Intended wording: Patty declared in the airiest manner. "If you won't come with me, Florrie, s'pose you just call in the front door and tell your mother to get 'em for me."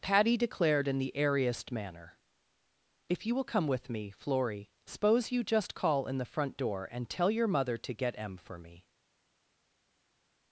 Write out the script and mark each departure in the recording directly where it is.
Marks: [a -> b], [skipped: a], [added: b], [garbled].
Patty declared in the airiest manner. "If you [won't -> will] come with me, Florrie, s'pose you just call in the front door and tell your mother to get 'em for me."